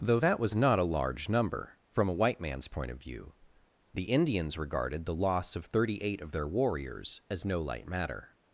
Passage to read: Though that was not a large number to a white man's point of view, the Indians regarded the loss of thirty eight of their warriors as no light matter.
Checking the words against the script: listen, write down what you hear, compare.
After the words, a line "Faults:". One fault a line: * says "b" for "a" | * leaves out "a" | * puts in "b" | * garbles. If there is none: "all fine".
Though that was not a large number from a white man's point of view, the Indians regarded the loss of thirty eight of their warriors as no light matter.
Faults:
* says "from" for "to"